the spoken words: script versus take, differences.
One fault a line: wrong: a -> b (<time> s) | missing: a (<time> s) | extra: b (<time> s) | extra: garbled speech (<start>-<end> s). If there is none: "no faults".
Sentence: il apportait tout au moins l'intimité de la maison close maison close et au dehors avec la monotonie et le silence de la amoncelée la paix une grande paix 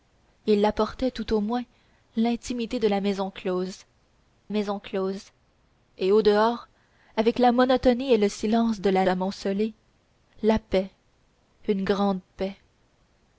no faults